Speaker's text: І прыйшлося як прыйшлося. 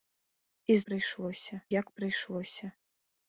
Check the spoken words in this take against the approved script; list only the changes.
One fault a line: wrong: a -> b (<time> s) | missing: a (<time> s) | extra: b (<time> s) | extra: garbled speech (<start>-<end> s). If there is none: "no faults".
no faults